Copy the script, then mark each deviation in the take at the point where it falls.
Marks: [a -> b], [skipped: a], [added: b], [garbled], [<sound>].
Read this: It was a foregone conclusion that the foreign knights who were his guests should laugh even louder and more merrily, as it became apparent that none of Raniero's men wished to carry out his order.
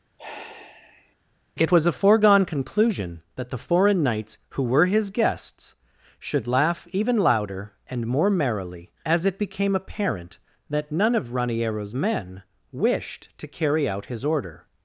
[sigh] It was a foregone conclusion that the foreign knights who were his guests should laugh even louder and more merrily, as it became apparent that none of Raniero's men wished to carry out his order.